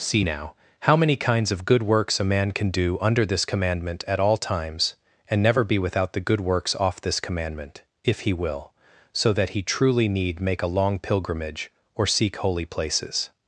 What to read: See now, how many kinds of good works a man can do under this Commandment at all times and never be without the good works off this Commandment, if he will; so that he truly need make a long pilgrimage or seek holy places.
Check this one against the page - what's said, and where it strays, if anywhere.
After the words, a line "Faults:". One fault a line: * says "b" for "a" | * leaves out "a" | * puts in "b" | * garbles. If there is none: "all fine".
See now, how many kinds of good works a man can do under this Commandment at all times and never be without the good works off this Commandment, if he will; so that he truly need make a long pilgrimage or seek holy places.
Faults:
all fine